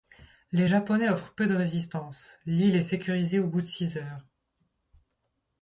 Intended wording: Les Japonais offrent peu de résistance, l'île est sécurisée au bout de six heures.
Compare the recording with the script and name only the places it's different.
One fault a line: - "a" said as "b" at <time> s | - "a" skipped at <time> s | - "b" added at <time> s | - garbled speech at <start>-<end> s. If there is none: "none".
none